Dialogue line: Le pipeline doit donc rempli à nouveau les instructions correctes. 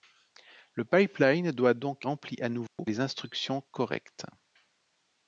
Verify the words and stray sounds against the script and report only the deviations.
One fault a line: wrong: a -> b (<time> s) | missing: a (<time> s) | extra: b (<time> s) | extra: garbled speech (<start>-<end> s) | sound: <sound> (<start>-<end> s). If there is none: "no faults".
sound: dropout (2.7-2.8 s)